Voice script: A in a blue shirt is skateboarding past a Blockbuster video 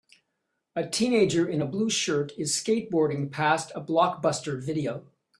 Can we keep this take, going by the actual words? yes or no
no